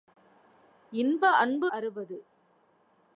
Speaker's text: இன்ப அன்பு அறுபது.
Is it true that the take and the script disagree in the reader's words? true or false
false